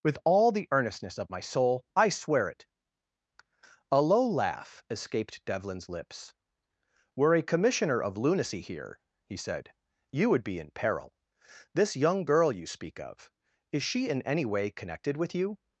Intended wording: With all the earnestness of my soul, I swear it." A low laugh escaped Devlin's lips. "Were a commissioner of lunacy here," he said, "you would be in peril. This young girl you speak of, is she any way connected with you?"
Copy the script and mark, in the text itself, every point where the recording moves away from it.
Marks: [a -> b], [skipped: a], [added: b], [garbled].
With all the earnestness of my soul, I swear it." A low laugh escaped Devlin's lips. "Were a commissioner of lunacy here," he said, "you would be in peril. This young girl you speak of, is she [added: in] any way connected with you?"